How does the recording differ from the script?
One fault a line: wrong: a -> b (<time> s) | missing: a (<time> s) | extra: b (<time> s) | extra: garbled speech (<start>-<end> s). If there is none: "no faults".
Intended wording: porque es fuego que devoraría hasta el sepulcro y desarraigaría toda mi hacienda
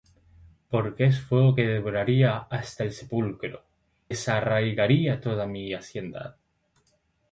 missing: y (3.6 s)